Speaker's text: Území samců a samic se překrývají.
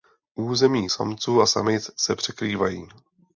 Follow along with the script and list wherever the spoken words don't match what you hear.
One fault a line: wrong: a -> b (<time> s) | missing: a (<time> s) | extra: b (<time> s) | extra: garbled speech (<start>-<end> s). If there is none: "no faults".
no faults